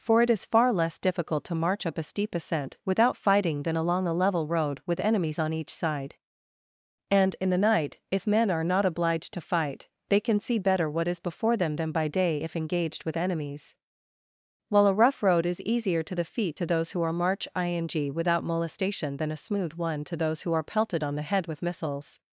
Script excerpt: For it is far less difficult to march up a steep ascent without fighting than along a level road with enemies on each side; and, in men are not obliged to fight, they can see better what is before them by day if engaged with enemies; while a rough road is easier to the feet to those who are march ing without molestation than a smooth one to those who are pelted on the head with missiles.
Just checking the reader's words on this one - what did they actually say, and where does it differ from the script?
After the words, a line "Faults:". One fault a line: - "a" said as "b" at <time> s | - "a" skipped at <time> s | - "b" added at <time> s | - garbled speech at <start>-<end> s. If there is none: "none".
For it is far less difficult to march up a steep ascent without fighting than along a level road with enemies on each side; and, in the night, if men are not obliged to fight, they can see better what is before them than by day if engaged with enemies; while a rough road is easier to the feet to those who are march ing without molestation than a smooth one to those who are pelted on the head with missiles.
Faults:
- "the night if" added at 7.5 s
- "than" added at 11.8 s